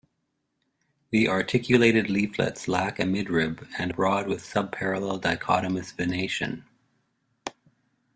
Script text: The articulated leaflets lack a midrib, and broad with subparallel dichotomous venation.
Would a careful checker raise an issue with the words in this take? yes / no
no